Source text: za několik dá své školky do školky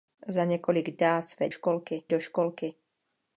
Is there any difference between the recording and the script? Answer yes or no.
no